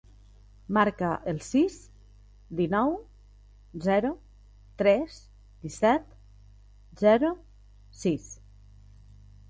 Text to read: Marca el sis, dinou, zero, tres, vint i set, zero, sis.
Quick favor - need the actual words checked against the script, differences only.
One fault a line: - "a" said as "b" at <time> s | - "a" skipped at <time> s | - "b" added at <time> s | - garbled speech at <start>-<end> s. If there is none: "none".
- "vint" skipped at 5.2 s